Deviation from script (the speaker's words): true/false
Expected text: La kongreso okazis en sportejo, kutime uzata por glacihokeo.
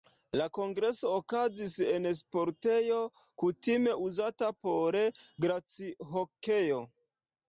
false